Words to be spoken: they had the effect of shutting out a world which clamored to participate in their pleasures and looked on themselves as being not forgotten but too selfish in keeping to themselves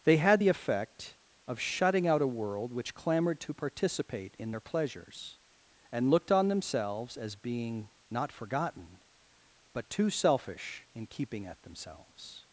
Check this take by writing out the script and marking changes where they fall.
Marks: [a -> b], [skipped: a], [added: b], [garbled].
they had the effect of shutting out a world which clamored to participate in their pleasures and looked on themselves as being not forgotten but too selfish in keeping [to -> at] themselves